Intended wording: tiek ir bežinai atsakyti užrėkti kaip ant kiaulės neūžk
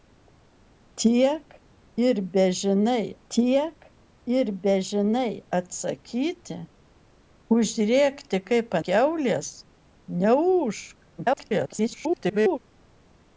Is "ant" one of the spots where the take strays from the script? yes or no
yes